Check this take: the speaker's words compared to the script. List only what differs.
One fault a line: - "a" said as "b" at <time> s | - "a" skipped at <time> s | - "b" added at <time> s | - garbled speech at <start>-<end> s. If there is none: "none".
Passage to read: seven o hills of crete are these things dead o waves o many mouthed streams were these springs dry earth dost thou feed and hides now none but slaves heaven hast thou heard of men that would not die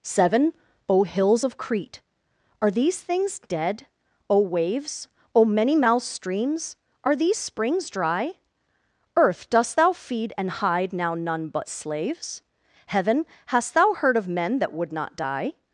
- "were" said as "are" at 7.0 s
- "hides" said as "hide" at 10.5 s